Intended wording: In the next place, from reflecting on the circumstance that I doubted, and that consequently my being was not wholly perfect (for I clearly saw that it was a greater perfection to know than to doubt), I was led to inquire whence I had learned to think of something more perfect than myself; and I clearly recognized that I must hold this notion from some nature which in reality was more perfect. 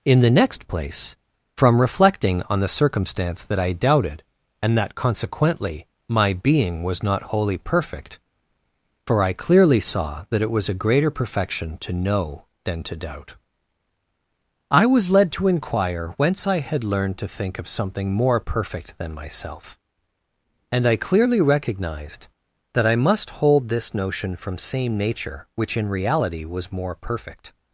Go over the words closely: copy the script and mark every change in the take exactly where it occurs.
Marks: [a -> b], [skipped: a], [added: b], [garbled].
In the next place, from reflecting on the circumstance that I doubted, and that consequently my being was not wholly perfect (for I clearly saw that it was a greater perfection to know than to doubt), I was led to inquire whence I had learned to think of something more perfect than myself; and I clearly recognized that I must hold this notion from [some -> same] nature which in reality was more perfect.